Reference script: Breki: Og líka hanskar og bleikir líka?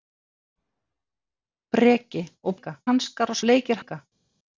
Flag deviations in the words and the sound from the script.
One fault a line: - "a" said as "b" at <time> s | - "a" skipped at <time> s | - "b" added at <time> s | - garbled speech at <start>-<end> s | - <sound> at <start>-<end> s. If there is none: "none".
none